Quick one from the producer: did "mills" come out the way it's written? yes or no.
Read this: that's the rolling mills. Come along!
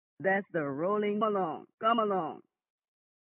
no